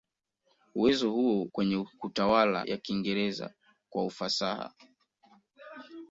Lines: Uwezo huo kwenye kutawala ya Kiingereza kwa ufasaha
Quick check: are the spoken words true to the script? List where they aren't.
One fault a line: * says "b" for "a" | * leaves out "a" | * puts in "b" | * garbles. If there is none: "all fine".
all fine